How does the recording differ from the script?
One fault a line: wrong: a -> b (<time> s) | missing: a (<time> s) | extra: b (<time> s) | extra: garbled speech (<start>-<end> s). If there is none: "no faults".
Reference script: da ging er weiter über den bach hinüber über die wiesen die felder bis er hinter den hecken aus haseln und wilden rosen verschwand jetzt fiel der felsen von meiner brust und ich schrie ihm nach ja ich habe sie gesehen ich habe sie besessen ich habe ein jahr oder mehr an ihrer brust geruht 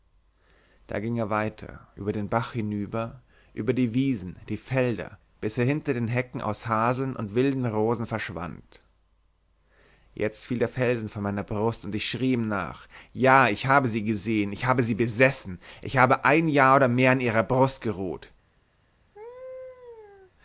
no faults